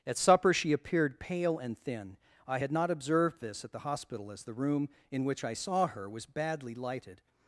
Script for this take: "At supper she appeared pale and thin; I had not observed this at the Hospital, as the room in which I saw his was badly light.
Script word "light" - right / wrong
wrong